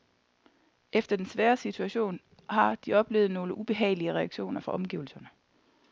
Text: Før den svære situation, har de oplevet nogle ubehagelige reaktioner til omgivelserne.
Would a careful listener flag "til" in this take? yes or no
yes